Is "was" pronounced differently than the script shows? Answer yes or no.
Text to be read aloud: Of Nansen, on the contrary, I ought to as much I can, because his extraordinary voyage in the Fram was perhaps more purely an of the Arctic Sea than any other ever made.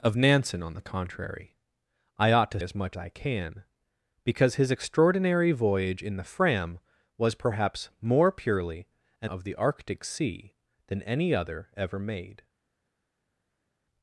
no